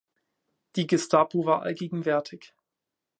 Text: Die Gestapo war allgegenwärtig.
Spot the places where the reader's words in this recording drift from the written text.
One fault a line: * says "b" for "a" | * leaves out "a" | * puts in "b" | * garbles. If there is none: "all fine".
all fine